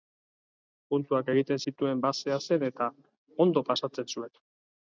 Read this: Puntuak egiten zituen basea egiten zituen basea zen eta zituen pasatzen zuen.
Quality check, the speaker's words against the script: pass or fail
fail